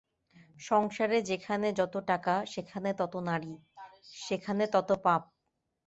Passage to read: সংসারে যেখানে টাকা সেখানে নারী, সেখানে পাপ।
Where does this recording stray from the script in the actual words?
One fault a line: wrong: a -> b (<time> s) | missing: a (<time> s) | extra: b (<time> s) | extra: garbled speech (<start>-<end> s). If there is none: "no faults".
extra: যত (1.8 s)
extra: তত (2.9 s)
extra: তত (4.7 s)